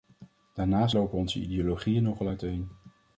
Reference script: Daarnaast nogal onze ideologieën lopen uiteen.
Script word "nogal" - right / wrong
wrong